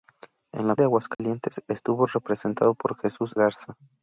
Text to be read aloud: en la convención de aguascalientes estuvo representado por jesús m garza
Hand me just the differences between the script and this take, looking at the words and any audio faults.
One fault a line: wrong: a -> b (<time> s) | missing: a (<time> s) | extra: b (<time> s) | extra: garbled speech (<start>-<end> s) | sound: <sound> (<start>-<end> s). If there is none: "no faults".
missing: convención (0.8 s)
sound: dropout (1.1-1.2 s)
missing: m (3.3 s)